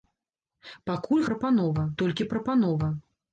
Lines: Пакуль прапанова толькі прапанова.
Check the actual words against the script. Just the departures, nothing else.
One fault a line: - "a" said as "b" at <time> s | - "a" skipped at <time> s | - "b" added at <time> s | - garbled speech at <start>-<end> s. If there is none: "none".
none